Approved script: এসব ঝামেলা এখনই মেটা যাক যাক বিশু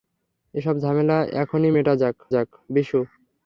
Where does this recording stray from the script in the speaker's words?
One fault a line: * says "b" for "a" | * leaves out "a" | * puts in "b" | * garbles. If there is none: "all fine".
all fine